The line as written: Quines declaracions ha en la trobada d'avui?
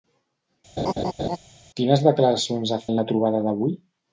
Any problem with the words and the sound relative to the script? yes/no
yes